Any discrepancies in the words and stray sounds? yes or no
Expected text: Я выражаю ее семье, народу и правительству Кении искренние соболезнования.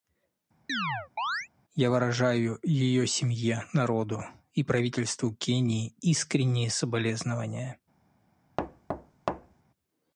yes